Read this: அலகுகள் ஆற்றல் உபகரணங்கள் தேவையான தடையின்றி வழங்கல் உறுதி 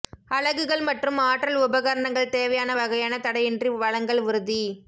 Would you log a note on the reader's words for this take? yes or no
yes